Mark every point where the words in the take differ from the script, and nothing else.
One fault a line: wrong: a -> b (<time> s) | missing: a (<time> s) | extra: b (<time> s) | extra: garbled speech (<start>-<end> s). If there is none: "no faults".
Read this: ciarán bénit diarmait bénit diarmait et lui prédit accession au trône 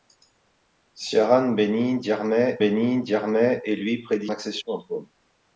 no faults